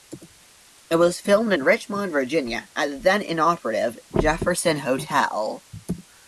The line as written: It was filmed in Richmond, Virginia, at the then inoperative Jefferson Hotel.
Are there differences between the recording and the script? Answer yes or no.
no